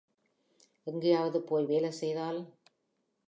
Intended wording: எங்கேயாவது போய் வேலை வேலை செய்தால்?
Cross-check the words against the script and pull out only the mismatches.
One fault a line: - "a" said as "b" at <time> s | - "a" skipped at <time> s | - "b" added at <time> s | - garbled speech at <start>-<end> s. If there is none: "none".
- "வேலை" skipped at 1.9 s